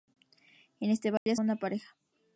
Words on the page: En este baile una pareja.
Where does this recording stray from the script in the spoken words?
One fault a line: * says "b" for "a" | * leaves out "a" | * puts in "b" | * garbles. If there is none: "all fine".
all fine